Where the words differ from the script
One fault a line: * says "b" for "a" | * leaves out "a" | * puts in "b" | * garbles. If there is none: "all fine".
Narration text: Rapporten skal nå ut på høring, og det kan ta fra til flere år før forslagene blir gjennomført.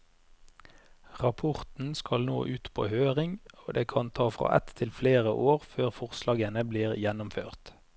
* puts in "ett"